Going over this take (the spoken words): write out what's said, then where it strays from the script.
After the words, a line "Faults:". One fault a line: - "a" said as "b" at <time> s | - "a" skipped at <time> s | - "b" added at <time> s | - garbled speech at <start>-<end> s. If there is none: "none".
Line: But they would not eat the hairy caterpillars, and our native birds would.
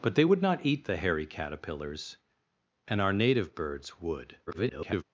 But they would not eat the hairy caterpillars, and our native birds would. [garbled]
Faults:
- garbled speech at 4.5-5.0 s